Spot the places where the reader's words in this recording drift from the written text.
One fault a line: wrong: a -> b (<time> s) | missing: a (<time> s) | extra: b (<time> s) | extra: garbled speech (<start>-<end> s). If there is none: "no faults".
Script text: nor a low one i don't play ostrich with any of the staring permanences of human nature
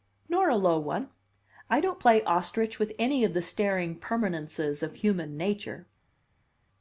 no faults